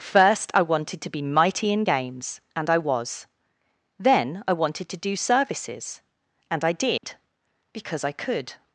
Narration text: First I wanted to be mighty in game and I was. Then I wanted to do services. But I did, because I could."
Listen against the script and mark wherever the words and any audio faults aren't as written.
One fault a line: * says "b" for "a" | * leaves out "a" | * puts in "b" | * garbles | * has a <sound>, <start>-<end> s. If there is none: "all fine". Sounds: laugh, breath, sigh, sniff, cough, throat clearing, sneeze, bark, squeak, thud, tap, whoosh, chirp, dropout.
* says "games" for "game"
* says "And" for "But"
* has a dropout, 7.0-7.0 s